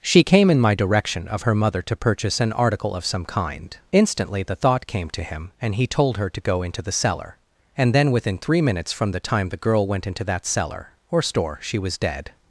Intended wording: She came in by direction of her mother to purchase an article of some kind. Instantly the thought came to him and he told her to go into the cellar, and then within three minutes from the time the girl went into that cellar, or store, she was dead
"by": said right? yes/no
no